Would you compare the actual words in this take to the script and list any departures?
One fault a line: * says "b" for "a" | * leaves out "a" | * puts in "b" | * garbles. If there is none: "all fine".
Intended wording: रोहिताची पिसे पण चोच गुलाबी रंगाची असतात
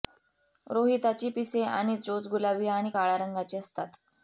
* says "आणि" for "पण"
* puts in "आणि काळ्या"